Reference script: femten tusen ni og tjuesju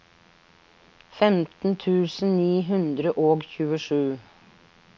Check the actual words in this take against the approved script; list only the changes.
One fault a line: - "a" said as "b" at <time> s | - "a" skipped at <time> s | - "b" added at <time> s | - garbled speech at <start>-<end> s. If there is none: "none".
- "hundre" added at 2.7 s